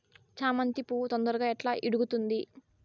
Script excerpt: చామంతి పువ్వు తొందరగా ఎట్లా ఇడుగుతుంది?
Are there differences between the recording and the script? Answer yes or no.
no